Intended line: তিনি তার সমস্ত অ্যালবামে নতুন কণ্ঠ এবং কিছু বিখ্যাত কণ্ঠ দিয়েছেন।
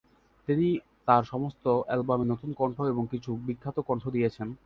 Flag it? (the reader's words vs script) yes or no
no